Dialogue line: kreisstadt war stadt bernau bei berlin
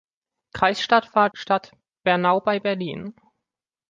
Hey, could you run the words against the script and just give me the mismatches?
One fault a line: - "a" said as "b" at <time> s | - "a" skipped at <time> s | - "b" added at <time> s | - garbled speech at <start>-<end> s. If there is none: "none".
none